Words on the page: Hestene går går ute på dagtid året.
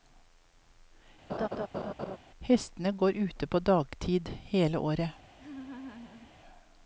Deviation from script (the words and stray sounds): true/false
true